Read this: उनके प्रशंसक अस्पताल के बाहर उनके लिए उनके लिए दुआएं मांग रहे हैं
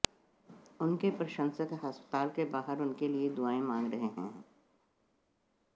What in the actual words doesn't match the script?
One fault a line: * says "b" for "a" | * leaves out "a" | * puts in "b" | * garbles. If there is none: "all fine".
* leaves out "उनके लिए"